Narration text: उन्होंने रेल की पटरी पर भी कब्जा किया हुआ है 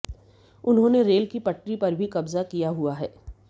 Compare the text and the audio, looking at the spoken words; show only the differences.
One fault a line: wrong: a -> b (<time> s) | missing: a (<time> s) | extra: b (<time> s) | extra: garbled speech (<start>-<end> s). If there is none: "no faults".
no faults